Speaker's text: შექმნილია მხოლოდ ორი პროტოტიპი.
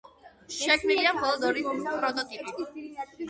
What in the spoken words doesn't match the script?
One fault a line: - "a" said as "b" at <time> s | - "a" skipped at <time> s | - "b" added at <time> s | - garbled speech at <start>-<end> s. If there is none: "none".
none